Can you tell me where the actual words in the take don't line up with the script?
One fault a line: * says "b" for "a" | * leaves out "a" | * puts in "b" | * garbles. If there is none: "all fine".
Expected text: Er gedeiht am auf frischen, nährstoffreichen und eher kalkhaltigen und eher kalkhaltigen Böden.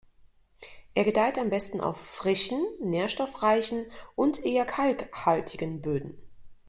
* puts in "besten"
* leaves out "und eher kalkhaltigen"